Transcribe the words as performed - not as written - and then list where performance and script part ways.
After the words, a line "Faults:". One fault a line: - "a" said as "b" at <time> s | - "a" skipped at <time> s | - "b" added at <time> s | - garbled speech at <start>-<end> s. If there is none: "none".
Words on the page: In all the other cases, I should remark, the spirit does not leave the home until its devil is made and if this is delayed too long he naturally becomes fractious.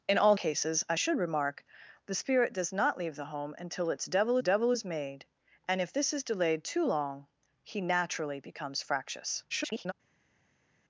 In all cases, I should remark, the spirit does not leave the home until its devil devil is made and if this is delayed too long he naturally becomes fractious. [garbled]
Faults:
- "the other" skipped at 0.3 s
- "devil" added at 4.4 s
- garbled speech at 9.5-9.9 s